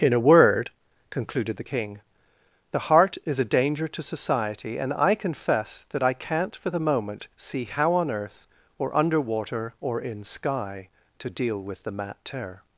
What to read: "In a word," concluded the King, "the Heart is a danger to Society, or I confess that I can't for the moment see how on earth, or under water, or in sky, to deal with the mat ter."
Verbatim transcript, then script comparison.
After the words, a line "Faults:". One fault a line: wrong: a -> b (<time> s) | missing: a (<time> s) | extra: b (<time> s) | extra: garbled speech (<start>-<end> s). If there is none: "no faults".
"In a word," concluded the King, "the Heart is a danger to Society, and I confess that I can't for the moment see how on earth, or under water, or in sky, to deal with the mat ter."
Faults:
wrong: or -> and (4.8 s)